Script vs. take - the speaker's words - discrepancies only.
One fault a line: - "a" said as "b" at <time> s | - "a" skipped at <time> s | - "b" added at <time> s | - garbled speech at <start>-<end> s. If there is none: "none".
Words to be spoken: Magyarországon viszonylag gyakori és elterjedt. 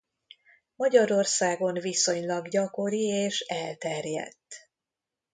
none